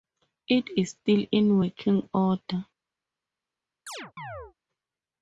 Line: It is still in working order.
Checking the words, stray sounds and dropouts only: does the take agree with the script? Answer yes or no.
no